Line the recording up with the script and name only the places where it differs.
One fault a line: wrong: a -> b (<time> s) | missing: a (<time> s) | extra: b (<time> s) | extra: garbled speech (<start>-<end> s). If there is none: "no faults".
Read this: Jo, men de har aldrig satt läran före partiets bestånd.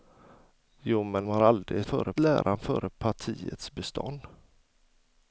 missing: de (1.2 s)
wrong: satt -> före (1.8 s)